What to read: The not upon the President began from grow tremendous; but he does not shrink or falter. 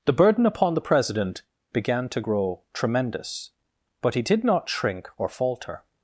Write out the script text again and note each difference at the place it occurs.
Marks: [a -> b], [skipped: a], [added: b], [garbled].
The [not -> burden] upon the President began [from -> to] grow tremendous; but he [does -> did] not shrink or falter.